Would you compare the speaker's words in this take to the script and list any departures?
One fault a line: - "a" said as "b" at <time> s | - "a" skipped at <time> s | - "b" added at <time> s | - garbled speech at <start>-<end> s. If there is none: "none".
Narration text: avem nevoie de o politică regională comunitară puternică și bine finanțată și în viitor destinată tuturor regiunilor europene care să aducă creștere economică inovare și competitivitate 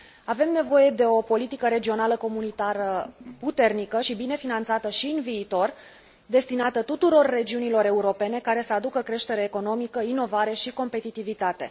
none